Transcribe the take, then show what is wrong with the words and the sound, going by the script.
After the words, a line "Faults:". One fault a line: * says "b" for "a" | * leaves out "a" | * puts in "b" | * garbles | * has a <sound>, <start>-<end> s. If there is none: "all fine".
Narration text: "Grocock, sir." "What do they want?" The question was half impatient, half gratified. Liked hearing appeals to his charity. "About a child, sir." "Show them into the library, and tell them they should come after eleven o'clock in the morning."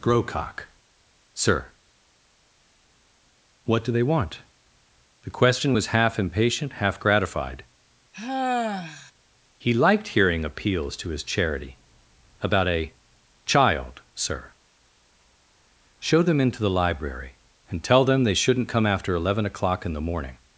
"Grocock, sir." "What do they want?" The question was half impatient, half gratified. He liked hearing appeals to his charity. "About a child, sir." "Show them into the library, and tell them they shouldn't come after eleven o'clock in the morning."
Faults:
* has a sigh, 8.1-9.1 s
* puts in "He"
* says "shouldn't" for "should"